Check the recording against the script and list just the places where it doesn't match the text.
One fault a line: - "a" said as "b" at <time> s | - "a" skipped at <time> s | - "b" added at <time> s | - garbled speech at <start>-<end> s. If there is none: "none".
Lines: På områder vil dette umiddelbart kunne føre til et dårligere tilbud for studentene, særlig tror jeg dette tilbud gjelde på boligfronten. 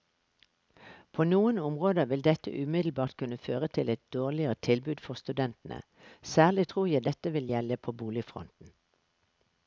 - "noen" added at 1.3 s
- "tilbud" said as "vil" at 7.4 s